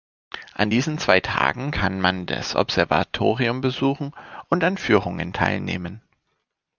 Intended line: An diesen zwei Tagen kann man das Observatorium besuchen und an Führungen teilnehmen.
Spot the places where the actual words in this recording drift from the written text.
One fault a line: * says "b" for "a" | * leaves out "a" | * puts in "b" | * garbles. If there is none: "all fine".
all fine